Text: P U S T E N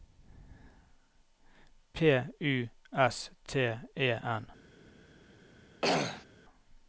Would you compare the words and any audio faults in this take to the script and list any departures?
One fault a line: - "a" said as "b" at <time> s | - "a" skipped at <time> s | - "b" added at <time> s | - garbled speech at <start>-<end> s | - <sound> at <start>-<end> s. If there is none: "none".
- throat clearing at 5.8-6.3 s